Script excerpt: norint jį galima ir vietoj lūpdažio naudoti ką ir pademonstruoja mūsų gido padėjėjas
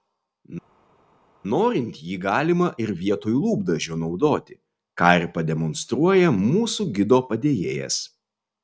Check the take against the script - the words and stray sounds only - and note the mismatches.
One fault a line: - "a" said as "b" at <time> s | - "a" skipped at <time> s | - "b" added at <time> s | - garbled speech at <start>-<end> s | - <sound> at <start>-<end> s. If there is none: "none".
none